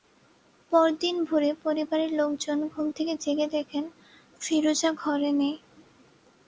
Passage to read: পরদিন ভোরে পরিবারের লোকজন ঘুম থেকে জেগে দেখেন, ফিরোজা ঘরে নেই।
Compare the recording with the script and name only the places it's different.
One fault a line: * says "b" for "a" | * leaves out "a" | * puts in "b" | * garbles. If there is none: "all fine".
all fine